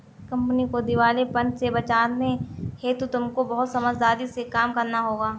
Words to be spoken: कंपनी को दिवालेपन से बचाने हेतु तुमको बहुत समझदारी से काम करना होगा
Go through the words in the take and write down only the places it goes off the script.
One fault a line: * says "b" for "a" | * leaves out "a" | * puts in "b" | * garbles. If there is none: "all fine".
all fine